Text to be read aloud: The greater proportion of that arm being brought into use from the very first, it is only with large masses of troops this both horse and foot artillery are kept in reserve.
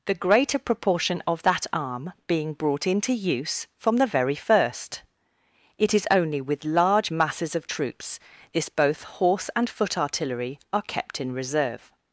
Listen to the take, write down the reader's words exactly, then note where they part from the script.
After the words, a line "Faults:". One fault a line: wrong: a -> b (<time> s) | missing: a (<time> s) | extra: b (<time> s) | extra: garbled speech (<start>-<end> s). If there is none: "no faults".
The greater proportion of that arm being brought into use from the very first, it is only with large masses of troops this both horse and foot artillery are kept in reserve.
Faults:
no faults